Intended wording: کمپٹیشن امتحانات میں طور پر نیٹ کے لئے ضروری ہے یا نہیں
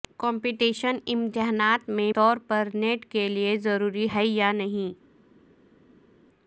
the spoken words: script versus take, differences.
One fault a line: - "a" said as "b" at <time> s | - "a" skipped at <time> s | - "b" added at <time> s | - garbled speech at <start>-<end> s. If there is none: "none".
none